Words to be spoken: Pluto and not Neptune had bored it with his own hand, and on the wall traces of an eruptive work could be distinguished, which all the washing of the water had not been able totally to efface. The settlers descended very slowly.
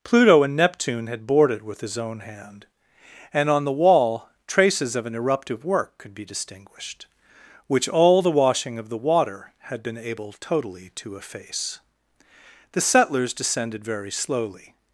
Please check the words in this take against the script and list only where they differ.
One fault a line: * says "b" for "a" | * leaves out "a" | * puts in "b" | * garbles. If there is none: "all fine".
* leaves out "not"
* leaves out "not"